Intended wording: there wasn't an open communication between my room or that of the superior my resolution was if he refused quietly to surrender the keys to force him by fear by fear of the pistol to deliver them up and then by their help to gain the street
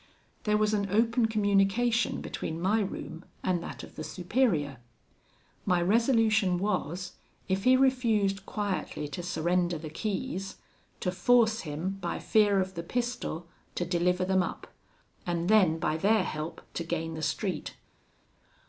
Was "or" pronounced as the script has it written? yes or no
no